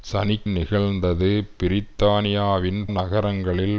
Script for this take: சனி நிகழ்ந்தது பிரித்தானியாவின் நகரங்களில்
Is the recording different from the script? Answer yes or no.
no